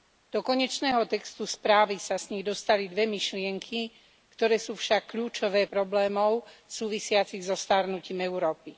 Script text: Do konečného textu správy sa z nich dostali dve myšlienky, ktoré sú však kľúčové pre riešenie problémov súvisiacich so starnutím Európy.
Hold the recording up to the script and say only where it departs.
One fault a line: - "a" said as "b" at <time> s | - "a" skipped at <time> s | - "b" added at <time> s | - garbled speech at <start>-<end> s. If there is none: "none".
- "pre riešenie" skipped at 5.7 s